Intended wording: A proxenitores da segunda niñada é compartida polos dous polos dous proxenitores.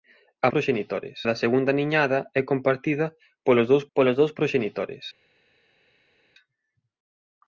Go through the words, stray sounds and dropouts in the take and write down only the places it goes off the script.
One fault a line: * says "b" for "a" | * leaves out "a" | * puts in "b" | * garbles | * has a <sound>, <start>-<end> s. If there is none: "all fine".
all fine